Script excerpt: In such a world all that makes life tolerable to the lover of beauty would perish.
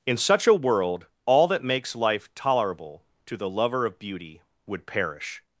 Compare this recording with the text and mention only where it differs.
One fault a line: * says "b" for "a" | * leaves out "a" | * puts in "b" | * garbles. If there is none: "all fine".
all fine